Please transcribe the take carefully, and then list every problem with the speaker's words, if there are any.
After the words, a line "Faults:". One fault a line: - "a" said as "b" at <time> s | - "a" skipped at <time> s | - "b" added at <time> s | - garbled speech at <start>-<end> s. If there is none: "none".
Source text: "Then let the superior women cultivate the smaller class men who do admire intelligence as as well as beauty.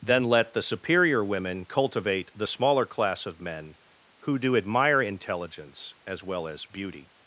"Then let the superior women cultivate the smaller class of men who do admire intelligence as well as beauty.
Faults:
- "of" added at 3.3 s
- "as" skipped at 6.2 s